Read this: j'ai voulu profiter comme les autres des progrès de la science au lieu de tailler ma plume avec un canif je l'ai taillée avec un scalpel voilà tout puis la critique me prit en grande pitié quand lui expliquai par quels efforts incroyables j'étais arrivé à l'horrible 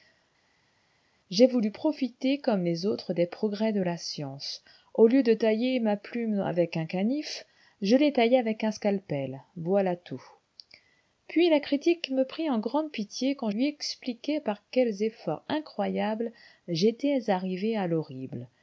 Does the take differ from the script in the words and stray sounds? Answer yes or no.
no